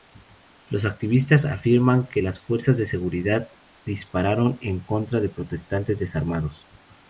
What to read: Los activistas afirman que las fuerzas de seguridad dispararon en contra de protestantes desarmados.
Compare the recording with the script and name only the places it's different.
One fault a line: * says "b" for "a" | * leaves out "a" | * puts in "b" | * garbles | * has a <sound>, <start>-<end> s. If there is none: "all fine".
all fine